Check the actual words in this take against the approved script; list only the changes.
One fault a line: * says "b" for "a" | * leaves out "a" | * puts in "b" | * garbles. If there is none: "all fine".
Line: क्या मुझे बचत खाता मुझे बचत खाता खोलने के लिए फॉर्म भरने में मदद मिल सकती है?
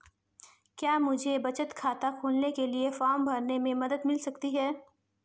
* leaves out "मुझे बचत खाता"